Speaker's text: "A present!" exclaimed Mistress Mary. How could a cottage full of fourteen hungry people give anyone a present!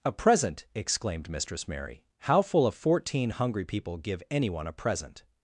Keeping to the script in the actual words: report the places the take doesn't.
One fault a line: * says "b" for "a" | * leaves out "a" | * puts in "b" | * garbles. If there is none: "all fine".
* leaves out "could a cottage"